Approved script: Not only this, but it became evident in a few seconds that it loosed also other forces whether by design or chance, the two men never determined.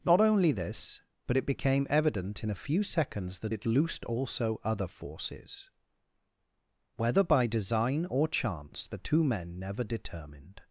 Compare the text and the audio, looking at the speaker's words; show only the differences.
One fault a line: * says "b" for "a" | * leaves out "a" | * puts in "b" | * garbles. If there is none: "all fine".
all fine